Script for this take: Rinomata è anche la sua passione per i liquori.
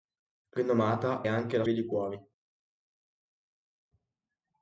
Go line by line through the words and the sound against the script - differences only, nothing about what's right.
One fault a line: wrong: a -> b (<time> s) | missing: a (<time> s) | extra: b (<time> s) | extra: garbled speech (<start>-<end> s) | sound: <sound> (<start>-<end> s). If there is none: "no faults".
missing: è (1.2 s)
missing: sua passione per (1.6 s)